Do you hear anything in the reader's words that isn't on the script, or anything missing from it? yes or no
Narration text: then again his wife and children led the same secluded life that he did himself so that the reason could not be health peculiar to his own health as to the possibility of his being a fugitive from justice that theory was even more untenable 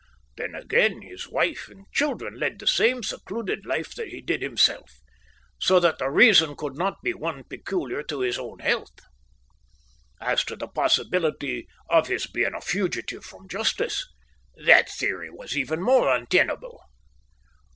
yes